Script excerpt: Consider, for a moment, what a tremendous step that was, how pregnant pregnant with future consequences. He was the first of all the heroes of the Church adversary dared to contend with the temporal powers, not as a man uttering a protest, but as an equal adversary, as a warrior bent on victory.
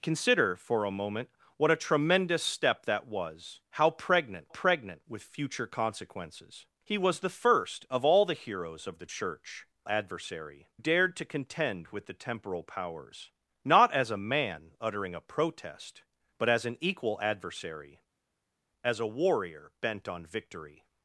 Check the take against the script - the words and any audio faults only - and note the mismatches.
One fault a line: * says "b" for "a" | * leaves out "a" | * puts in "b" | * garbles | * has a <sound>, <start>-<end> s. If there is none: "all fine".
all fine